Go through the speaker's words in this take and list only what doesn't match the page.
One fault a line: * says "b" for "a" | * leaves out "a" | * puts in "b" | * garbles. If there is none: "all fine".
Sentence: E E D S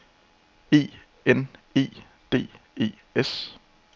* puts in "N"
* puts in "E"